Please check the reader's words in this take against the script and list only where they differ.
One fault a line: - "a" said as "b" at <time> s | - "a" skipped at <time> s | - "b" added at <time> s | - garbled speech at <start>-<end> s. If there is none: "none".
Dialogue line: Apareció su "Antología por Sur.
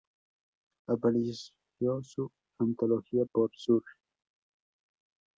none